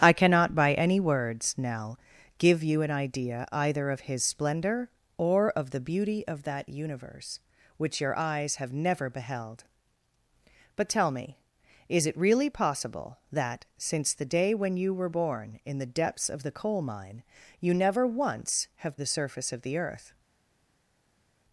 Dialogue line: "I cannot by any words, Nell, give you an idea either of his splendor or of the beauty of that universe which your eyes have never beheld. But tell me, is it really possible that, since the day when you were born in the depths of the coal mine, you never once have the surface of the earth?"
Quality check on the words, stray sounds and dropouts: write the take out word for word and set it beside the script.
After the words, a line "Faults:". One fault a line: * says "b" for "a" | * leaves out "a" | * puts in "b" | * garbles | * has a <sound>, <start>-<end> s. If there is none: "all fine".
"I cannot by any words, Nell, give you an idea either of his splendor or of the beauty of that universe which your eyes have never beheld. But tell me, is it really possible that, since the day when you were born in the depths of the coal mine, you never once have the surface of the earth?"
Faults:
all fine